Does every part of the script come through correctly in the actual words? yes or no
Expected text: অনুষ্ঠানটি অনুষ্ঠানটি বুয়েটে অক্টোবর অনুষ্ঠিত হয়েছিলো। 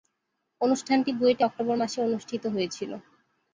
no